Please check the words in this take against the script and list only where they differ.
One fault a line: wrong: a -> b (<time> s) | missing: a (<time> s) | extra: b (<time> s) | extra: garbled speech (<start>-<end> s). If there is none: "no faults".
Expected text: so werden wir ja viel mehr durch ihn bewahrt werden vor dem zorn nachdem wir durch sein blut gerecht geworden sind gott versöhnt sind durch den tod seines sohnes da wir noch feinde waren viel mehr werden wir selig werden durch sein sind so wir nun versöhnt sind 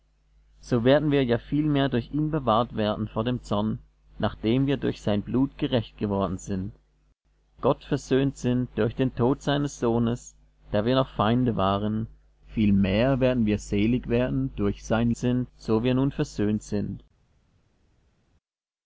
no faults